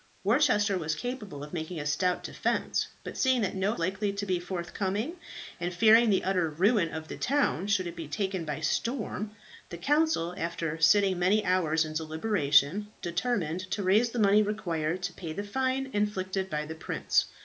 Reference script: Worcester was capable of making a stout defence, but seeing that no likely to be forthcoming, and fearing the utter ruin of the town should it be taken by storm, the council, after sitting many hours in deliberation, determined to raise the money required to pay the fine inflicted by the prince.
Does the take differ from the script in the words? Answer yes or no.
no